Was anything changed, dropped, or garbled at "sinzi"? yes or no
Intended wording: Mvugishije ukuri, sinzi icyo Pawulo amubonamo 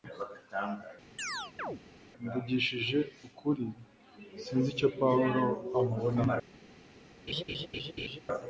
no